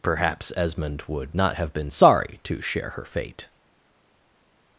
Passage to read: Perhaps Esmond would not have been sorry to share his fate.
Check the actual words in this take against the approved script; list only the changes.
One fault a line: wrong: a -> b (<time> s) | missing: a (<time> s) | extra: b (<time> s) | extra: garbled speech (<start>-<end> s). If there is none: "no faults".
wrong: his -> her (3.0 s)